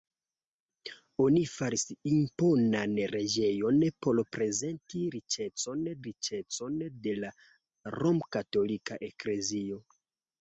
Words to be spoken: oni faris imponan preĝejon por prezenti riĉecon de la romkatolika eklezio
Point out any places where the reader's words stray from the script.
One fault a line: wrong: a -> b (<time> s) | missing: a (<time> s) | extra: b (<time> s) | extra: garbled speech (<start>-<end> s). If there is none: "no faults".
extra: riĉecon (6.1 s)